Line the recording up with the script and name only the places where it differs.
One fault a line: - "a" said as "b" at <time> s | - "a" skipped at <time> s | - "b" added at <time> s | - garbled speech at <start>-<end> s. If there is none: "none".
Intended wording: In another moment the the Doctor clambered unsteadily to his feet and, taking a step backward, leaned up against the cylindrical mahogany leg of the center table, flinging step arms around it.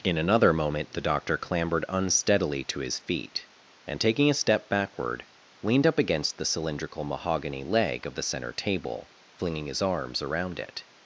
- "the" skipped at 1.1 s
- "step" said as "his" at 9.7 s